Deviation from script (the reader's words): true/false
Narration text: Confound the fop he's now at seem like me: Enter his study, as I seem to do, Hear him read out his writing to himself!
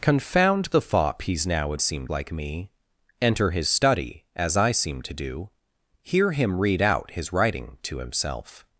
false